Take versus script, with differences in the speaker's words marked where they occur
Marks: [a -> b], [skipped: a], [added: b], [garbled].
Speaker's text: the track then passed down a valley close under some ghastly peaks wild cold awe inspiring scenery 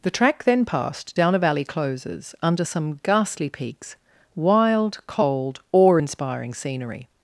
the track then passed down a valley [close -> closes] under some ghastly peaks wild cold awe inspiring scenery